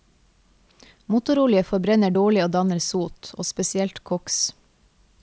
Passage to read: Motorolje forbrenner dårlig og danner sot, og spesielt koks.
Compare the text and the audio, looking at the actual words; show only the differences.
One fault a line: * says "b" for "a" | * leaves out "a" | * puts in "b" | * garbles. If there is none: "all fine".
all fine